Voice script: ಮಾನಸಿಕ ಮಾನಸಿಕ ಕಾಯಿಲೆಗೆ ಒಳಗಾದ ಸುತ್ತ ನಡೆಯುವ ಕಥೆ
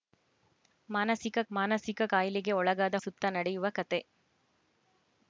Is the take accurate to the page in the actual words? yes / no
yes